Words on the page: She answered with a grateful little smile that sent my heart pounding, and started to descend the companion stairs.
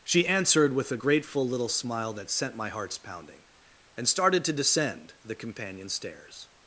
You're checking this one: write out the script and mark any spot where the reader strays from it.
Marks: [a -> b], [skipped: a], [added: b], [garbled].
She answered with a grateful little smile that sent my [heart -> hearts] pounding, and started to descend the companion stairs.